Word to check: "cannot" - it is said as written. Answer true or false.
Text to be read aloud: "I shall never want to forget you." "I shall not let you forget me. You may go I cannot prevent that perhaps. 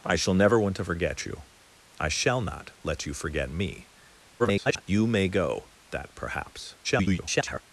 false